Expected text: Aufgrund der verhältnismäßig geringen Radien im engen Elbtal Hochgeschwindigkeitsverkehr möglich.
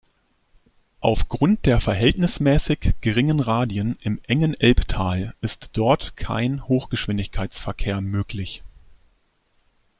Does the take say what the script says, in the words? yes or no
no